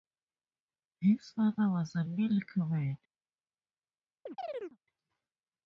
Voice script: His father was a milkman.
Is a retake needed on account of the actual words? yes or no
no